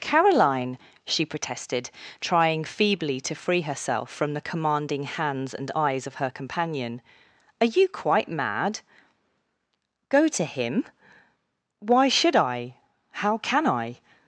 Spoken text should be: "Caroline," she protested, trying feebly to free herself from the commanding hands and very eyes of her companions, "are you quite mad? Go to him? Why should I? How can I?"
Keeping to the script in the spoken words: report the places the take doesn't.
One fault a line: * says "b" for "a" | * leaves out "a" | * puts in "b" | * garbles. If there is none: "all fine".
* leaves out "very"
* says "companion" for "companions"